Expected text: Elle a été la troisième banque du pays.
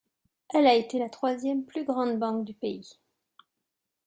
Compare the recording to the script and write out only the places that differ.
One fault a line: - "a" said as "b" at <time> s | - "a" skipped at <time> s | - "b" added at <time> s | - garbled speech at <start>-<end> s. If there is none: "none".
- "plus grande" added at 1.6 s